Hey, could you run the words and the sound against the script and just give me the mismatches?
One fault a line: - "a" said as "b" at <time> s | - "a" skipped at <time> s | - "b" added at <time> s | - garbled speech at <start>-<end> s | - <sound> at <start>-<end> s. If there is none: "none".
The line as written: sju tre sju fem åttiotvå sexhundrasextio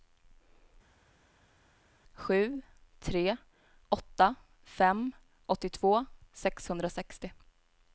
- "sju" said as "åtta" at 3.9 s